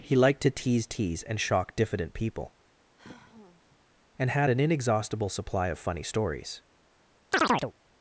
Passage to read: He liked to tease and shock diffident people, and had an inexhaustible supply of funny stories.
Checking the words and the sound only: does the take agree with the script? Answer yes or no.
no